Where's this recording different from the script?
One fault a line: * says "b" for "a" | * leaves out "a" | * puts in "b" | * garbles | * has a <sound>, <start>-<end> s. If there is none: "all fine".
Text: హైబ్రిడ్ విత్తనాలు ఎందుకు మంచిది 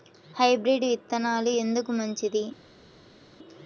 all fine